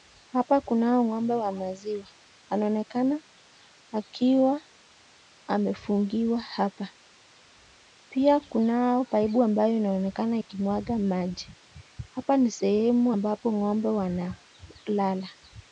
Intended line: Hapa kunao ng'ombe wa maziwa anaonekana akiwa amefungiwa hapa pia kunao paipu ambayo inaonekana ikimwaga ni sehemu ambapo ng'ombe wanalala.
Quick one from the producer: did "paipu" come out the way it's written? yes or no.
yes